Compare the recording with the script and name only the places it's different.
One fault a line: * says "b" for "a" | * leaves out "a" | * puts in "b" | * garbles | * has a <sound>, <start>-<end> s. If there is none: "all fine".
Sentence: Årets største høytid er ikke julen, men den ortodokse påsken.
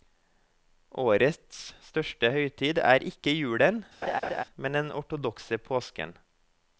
* has a laugh, 4.0-4.4 s